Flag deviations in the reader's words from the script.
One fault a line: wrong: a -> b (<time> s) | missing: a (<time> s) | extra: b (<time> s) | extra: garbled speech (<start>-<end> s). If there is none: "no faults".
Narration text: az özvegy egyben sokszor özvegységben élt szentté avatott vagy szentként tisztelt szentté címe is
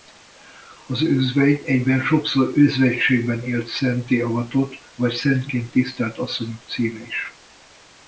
wrong: szentté -> asszonyok (6.2 s)